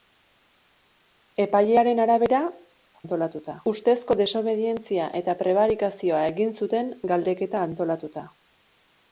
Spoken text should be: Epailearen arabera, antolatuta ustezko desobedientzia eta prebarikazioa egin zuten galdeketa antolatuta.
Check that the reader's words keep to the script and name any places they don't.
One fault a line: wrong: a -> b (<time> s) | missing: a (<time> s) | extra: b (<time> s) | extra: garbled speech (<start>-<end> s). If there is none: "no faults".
no faults